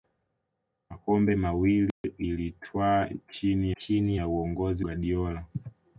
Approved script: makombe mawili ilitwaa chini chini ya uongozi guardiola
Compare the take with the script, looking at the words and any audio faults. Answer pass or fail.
fail